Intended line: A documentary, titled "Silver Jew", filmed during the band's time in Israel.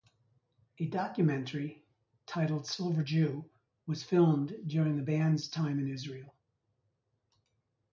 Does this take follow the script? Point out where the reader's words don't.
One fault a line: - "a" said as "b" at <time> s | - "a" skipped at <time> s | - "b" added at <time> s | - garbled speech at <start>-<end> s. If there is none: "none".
- "was" added at 3.8 s